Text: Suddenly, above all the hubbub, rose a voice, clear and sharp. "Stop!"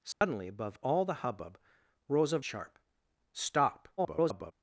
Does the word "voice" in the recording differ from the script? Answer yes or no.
yes